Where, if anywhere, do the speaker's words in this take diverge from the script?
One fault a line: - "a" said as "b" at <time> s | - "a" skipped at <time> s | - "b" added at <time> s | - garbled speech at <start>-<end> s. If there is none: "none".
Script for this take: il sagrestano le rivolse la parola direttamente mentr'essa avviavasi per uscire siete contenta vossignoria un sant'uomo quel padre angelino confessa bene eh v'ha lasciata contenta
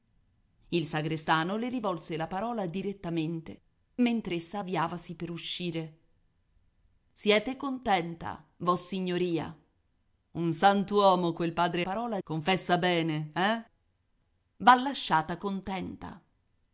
- "angelino" said as "parola" at 11.8 s